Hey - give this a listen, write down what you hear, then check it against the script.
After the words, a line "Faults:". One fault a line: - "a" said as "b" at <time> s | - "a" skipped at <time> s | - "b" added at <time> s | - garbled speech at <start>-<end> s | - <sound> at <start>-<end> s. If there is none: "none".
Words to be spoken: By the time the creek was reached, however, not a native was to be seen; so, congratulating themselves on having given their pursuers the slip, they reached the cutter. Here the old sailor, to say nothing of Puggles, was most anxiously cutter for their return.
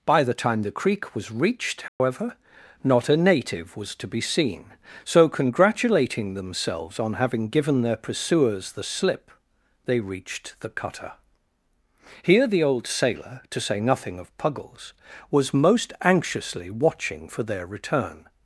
By the time the creek was reached, however, not a native was to be seen; so, congratulating themselves on having given their pursuers the slip, they reached the cutter. Here the old sailor, to say nothing of Puggles, was most anxiously watching for their return.
Faults:
- dropout at 1.9-2.0 s
- "cutter" said as "watching" at 16.7 s